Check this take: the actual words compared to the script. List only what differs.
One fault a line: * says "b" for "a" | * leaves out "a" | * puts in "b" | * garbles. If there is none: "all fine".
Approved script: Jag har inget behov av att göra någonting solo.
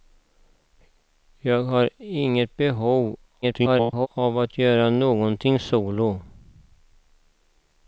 * garbles